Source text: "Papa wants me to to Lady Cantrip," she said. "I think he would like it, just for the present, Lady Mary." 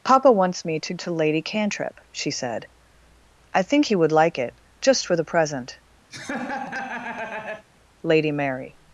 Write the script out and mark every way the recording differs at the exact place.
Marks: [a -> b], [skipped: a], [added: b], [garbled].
"Papa wants me to to Lady Cantrip," she said. "I think he would like it, just for the present, Lady Mary."